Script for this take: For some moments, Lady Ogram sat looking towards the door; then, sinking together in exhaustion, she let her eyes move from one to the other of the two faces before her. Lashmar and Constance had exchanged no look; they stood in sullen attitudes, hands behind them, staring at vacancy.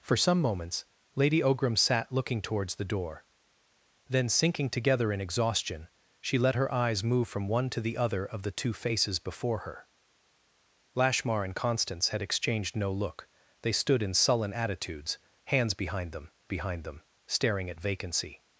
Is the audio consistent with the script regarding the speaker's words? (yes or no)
no